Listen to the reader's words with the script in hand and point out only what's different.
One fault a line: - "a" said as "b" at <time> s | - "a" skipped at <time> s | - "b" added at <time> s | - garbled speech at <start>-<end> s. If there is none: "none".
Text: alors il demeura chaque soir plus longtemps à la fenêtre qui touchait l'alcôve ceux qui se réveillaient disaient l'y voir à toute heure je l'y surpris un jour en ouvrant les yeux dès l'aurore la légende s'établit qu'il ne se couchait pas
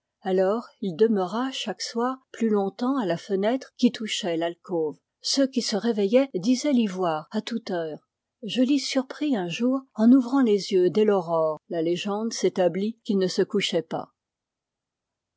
none